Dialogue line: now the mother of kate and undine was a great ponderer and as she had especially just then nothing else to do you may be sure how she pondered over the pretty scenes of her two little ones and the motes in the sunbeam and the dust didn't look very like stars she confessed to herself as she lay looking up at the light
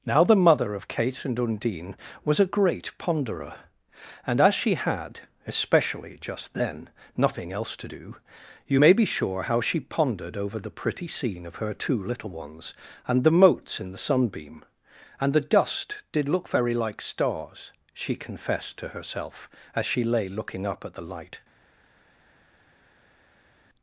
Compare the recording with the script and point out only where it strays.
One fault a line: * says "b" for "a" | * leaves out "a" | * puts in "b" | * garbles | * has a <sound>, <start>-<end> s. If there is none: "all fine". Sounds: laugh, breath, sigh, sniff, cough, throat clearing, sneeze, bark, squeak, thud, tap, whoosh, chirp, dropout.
* says "scene" for "scenes"
* says "did" for "didn't"